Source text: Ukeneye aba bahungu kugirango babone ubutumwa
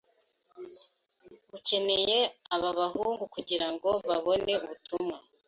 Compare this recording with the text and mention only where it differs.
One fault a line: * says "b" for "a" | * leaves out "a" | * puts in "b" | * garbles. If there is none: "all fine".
all fine